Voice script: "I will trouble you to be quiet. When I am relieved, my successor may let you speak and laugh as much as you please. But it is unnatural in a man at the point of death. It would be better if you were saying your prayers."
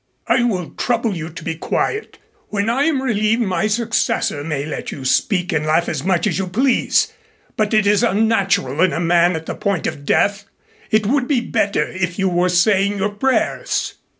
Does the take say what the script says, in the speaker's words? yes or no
yes